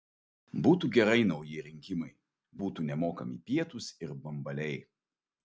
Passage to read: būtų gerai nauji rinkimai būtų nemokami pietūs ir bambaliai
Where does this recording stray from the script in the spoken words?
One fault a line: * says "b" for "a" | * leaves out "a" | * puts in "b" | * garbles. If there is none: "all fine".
all fine